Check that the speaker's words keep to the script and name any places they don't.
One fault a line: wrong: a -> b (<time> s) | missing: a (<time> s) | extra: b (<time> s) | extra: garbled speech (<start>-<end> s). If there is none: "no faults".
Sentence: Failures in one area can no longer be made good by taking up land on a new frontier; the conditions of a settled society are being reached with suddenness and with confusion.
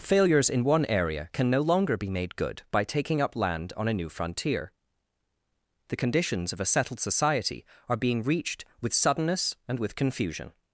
no faults